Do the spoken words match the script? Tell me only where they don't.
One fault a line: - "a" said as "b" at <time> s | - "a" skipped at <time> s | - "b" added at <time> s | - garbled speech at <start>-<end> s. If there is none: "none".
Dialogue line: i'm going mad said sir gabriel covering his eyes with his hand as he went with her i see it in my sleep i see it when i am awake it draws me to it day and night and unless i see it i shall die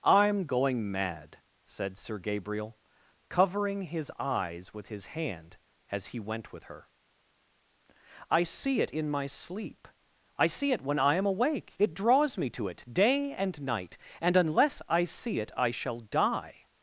none